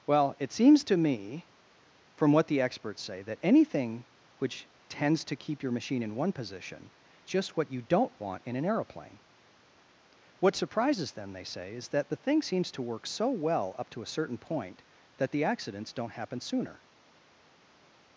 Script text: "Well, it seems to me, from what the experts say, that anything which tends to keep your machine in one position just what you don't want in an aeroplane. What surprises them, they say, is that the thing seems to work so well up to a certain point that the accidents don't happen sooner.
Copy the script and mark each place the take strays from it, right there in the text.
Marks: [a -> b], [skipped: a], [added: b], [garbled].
"Well, it seems to me, from what the experts say, that anything which tends to keep your machine in one position just what you don't want in an aeroplane. What surprises them, they say, is that the thing seems to work so well up to a certain point that the accidents don't happen sooner.